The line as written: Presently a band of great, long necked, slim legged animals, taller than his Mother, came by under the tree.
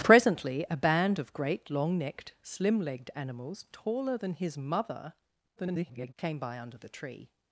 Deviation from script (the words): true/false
true